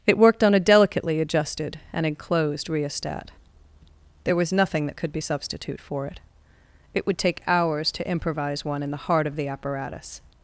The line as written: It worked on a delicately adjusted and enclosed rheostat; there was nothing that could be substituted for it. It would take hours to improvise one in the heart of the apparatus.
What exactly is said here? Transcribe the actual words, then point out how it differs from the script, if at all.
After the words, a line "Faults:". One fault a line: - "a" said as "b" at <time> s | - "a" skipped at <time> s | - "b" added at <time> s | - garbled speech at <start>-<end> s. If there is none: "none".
It worked on a delicately adjusted and enclosed rheostat; there was nothing that could be substitute for it. It would take hours to improvise one in the heart of the apparatus.
Faults:
- "substituted" said as "substitute" at 5.2 s